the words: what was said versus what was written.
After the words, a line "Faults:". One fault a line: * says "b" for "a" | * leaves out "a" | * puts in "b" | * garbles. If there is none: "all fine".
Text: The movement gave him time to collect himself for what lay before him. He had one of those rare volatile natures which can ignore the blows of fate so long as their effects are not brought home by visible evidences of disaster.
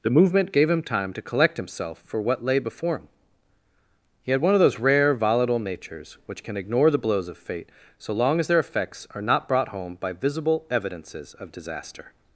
The movement gave him time to collect himself for what lay before him. He had one of those rare volatile natures which can ignore the blows of fate so long as their effects are not brought home by visible evidences of disaster.
Faults:
all fine